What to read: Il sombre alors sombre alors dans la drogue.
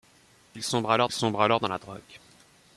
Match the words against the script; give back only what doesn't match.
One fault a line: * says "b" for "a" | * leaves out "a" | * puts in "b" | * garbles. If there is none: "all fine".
all fine